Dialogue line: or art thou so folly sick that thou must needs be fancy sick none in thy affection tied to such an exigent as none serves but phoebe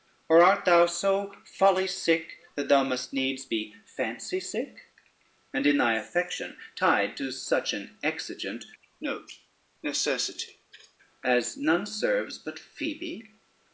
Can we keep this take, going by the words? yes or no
no